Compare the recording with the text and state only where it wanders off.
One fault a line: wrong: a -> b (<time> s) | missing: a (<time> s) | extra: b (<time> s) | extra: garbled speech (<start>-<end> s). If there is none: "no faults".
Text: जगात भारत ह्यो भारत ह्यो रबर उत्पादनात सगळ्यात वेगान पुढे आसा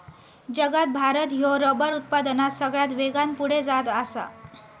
missing: भारत ह्यो (1.5 s)
extra: जात (3.6 s)